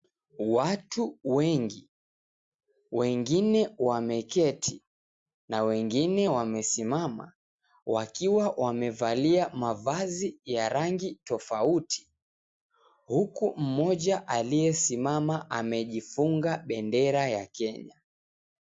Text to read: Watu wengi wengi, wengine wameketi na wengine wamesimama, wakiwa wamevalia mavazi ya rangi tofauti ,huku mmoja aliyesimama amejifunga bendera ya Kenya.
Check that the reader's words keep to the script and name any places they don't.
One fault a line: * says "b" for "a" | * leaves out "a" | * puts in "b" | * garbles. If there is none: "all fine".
* leaves out "wengi"